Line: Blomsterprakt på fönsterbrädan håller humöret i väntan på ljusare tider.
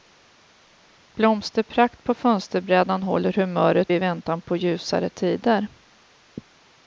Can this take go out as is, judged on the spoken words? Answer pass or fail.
pass